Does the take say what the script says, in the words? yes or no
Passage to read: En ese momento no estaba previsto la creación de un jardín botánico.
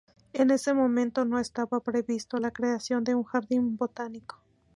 yes